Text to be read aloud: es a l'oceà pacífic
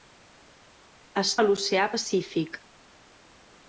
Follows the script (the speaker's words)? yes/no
yes